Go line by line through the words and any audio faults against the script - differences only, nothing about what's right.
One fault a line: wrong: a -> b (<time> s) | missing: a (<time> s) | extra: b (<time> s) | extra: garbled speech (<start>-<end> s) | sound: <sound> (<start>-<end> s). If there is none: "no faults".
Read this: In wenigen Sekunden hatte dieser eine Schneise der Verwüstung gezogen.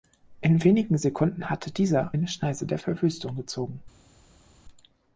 no faults